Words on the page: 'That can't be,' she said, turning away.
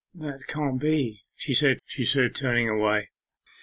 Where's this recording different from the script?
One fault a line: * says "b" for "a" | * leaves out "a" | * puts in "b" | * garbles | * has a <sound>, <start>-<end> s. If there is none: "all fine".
* puts in "she said"